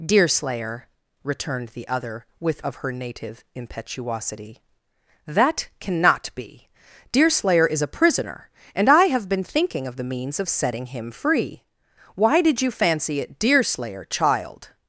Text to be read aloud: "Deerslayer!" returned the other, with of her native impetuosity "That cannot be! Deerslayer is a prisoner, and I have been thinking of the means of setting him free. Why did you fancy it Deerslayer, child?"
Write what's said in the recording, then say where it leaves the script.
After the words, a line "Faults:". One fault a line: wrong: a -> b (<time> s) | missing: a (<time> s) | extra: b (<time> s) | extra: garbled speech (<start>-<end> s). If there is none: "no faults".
"Deerslayer!" returned the other, with of her native impetuosity "That cannot be! Deerslayer is a prisoner, and I have been thinking of the means of setting him free. Why did you fancy it Deerslayer, child?"
Faults:
no faults